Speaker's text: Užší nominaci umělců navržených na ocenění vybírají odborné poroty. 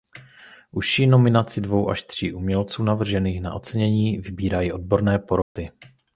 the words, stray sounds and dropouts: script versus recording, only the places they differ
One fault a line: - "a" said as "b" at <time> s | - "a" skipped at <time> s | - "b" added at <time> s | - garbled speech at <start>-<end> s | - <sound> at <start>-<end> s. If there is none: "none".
- "dvou až tří" added at 1.6 s
- dropout at 5.4-5.6 s